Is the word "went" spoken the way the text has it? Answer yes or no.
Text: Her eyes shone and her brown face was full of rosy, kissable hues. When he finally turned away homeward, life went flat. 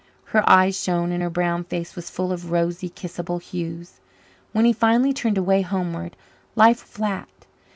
no